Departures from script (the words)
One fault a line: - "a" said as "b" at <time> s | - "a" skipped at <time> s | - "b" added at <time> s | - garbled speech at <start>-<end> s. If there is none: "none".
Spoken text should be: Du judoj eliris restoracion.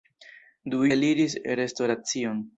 - "judoj" skipped at 0.8 s